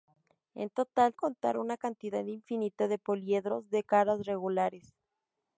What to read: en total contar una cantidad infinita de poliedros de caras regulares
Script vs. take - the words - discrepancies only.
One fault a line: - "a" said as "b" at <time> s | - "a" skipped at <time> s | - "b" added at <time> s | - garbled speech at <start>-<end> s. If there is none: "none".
none